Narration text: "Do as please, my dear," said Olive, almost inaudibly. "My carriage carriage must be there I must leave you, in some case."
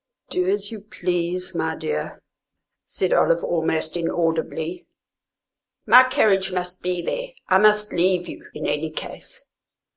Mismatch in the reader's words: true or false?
true